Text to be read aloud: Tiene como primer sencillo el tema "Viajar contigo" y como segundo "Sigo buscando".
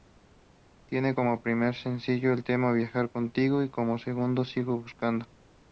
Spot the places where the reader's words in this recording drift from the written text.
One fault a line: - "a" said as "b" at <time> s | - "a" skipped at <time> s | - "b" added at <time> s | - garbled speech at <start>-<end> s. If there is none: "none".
none